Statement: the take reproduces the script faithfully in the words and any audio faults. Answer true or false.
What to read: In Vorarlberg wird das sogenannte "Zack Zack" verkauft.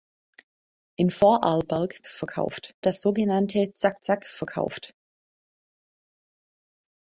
false